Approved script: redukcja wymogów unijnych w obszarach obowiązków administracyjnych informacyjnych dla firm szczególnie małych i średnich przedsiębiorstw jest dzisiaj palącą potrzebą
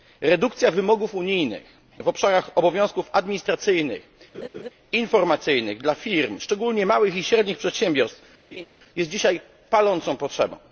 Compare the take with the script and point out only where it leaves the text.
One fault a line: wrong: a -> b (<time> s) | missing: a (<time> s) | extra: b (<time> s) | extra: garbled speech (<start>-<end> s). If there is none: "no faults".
no faults